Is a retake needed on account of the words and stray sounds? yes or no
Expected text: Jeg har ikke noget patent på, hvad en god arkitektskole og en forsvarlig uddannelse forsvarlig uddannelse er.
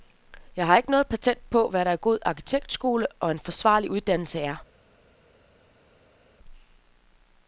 yes